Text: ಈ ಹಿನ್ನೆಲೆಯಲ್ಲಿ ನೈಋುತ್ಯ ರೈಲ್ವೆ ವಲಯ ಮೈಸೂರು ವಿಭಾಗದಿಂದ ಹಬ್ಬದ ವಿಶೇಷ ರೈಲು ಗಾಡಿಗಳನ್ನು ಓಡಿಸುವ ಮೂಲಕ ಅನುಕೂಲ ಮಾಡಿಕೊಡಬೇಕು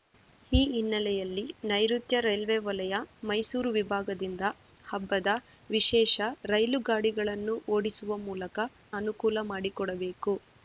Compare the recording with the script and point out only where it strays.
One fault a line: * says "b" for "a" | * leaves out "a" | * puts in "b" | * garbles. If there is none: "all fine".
all fine